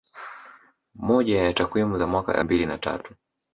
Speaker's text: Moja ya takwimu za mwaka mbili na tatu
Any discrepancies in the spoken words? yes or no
no